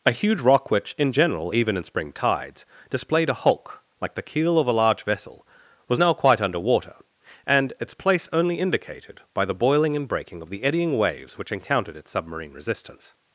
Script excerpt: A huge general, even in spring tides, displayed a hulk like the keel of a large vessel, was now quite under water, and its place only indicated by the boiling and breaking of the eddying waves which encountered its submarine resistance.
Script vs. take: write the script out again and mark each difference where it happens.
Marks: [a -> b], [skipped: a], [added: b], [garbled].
A huge [added: rock which in] general, even in spring tides, displayed a hulk like the keel of a large vessel, was now quite under water, and its place only indicated by the boiling and breaking of the eddying waves which encountered its submarine resistance.